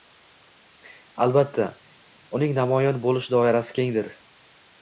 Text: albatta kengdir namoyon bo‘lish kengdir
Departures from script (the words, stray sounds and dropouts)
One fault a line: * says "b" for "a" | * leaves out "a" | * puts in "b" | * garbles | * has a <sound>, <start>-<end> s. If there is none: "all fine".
* says "uning" for "kengdir"
* puts in "doirasi"